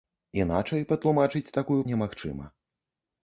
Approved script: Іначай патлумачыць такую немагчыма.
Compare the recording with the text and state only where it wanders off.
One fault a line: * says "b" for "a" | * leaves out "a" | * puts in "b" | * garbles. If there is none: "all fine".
all fine